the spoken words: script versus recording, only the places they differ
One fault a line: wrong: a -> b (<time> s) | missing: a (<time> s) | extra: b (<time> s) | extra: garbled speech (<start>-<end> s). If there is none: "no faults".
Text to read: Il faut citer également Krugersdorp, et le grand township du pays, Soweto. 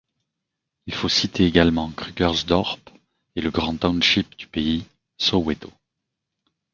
no faults